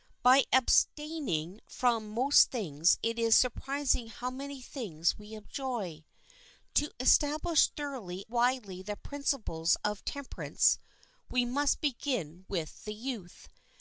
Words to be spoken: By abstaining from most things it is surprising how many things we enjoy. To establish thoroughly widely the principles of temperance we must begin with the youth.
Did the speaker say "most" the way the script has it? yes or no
yes